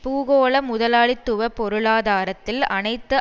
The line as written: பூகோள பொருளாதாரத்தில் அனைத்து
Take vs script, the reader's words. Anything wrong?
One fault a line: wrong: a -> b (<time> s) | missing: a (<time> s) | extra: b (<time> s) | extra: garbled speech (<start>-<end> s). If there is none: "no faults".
extra: முதலாளித்துவ (0.6 s)